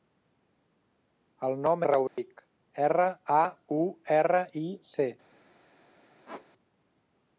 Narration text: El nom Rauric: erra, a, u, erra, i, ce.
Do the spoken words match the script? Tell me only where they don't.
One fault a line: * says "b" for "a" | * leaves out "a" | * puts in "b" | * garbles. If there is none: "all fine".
all fine